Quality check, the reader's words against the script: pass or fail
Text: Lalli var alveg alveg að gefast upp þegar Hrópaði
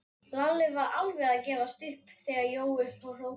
fail